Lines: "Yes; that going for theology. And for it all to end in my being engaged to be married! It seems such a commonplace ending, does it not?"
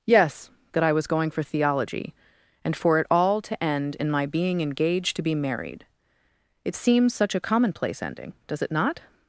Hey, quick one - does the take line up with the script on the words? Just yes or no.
no